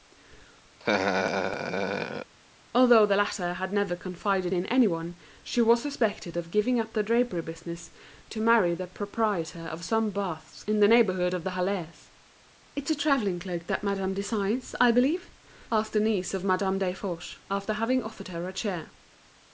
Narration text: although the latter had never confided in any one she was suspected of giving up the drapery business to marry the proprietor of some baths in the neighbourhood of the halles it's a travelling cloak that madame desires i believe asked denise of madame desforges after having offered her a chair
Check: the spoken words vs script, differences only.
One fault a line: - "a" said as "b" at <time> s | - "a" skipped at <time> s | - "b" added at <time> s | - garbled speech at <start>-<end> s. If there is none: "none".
none